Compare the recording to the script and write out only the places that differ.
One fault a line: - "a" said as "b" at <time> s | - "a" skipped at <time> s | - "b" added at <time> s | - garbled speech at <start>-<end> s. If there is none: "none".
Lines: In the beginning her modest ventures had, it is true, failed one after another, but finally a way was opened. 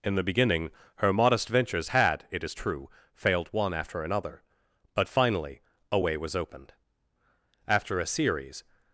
- "After a series" added at 7.7 s